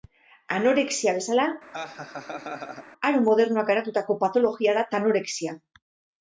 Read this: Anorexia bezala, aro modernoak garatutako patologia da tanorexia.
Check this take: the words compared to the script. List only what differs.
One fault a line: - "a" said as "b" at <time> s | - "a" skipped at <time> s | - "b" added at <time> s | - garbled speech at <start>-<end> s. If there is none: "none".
none